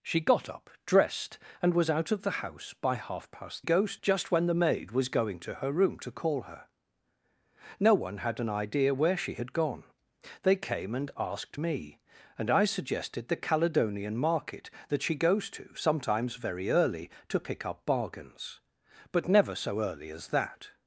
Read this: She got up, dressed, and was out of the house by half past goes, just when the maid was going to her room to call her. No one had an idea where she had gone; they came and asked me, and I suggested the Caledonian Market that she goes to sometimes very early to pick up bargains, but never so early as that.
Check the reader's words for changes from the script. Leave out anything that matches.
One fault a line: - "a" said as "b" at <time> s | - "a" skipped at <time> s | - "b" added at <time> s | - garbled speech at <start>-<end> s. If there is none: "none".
none